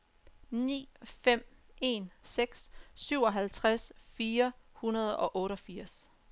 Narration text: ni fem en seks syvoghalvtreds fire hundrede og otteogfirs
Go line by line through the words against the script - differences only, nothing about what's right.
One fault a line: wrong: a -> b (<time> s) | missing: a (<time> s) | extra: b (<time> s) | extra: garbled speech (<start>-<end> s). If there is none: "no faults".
no faults